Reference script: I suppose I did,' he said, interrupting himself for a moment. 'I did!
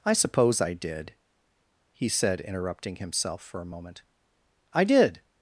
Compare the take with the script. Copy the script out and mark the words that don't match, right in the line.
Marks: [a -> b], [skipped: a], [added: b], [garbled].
I suppose I did,' he said, interrupting himself for a moment. 'I did!